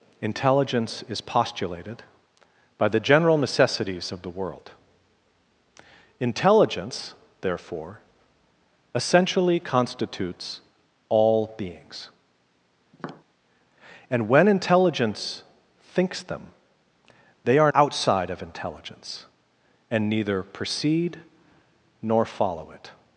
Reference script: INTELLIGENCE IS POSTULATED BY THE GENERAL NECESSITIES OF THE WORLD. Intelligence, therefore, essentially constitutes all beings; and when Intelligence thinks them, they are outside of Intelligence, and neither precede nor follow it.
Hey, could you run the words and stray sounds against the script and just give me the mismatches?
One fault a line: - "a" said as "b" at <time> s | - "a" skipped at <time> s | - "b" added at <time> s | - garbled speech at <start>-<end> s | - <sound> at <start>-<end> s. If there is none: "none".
- tap at 12.9-13.2 s